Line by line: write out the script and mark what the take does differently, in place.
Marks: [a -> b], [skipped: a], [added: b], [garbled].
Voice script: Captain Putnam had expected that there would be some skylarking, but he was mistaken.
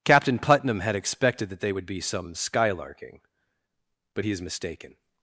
Captain Putnam had expected that [there -> they] would be some skylarking, but he [was -> is] mistaken.